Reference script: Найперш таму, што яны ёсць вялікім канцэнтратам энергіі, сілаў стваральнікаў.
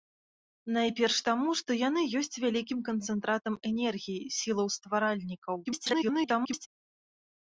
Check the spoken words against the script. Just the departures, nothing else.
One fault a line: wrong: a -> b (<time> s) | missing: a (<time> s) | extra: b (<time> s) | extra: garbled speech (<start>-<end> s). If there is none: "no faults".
extra: garbled speech (5.6-6.7 s)